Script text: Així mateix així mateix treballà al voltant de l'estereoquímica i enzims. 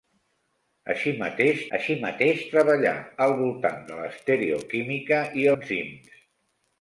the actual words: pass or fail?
pass